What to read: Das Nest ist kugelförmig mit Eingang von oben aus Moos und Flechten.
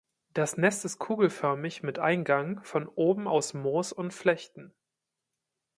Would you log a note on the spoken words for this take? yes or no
no